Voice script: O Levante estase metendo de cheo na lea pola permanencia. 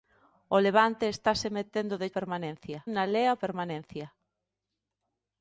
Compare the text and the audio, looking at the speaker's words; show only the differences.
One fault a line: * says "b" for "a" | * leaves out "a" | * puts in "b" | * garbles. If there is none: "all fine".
* says "permanencia" for "cheo"
* leaves out "pola"